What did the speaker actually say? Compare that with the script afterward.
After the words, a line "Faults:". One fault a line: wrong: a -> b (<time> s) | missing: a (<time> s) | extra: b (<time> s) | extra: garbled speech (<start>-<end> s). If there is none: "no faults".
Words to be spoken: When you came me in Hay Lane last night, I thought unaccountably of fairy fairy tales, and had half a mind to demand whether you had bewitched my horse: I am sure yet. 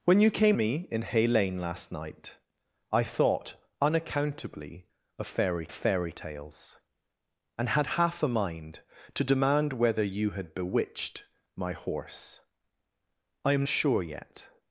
When you came me in Hay Lane last night, I thought unaccountably of fairy fairy tales, and had half a mind to demand whether you had bewitched my horse: I am sure yet.
Faults:
no faults